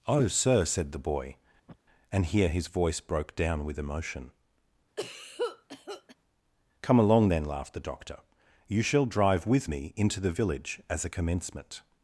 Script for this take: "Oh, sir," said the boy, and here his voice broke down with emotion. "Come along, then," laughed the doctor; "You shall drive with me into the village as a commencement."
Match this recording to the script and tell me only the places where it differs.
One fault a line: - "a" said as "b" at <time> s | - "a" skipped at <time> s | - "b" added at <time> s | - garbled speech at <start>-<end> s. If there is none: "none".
none